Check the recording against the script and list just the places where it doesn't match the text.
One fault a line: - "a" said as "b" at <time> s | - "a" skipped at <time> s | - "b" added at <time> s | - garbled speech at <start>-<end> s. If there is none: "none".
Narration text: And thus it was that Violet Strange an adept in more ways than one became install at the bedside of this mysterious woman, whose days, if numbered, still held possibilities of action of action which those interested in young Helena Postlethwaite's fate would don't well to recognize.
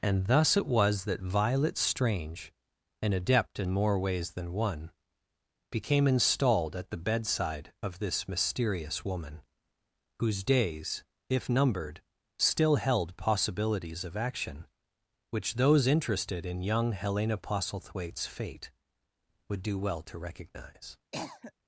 - "install" said as "installed" at 6.1 s
- "of action" skipped at 14.7 s
- "don't" said as "do" at 19.6 s